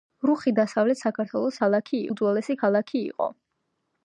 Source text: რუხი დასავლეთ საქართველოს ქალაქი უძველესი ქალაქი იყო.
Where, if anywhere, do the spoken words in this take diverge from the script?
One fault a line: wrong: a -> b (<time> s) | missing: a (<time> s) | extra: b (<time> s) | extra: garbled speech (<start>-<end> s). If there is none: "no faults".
no faults